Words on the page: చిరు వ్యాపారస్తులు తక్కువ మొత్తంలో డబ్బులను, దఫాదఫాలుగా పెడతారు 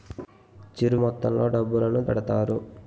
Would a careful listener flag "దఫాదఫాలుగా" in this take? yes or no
yes